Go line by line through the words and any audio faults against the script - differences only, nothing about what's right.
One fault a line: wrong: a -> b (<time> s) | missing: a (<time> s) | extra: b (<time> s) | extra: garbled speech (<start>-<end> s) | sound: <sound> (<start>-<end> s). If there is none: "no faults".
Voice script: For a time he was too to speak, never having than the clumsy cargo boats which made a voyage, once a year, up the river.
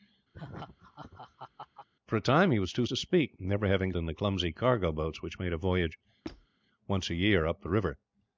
sound: laugh (0.3-1.9 s)
sound: squeak (6.2-6.5 s)